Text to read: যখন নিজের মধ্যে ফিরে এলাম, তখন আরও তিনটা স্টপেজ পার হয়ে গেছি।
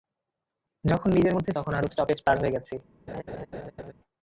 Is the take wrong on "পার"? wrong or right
right